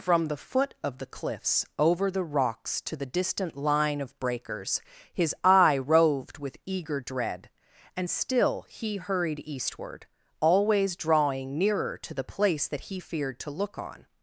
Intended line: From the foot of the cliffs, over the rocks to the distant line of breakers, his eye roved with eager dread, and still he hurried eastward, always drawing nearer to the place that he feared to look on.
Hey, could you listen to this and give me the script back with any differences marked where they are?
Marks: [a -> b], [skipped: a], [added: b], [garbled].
From the foot of the cliffs, over the rocks to the distant line of breakers, his eye roved with eager dread, and still he hurried eastward, always drawing nearer to the place that he feared to look on.